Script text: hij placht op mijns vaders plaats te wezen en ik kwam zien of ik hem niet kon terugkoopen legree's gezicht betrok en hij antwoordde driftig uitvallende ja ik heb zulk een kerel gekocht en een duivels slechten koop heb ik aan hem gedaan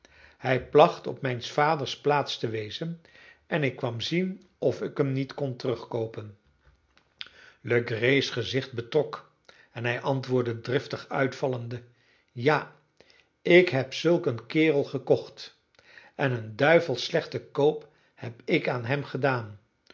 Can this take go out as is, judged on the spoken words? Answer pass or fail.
pass